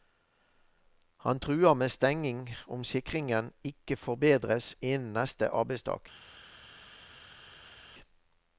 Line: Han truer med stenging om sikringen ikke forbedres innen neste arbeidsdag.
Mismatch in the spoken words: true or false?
false